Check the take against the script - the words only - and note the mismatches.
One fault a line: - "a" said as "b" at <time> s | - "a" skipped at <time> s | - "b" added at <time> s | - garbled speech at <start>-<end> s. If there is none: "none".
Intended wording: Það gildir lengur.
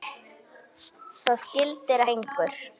none